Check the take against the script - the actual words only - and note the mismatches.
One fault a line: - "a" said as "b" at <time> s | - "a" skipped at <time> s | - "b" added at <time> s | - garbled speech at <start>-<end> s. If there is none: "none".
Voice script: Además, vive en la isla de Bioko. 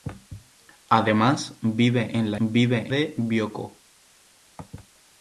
- "isla" said as "vive" at 2.4 s